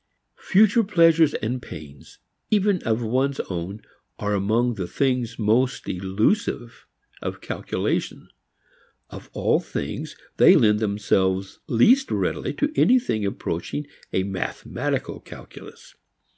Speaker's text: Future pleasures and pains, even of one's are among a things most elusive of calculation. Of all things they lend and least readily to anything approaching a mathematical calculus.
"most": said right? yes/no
yes